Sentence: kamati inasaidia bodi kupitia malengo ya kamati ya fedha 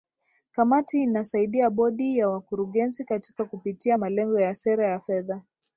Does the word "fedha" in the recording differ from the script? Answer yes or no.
no